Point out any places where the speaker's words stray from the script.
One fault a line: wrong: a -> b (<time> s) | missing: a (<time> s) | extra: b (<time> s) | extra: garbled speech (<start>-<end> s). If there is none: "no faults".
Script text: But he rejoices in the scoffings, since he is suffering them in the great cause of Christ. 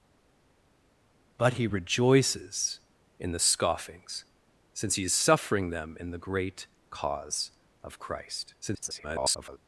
extra: garbled speech (8.6-9.6 s)